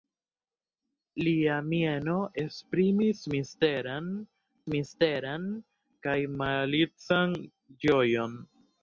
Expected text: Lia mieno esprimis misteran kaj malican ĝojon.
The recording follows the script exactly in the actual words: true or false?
false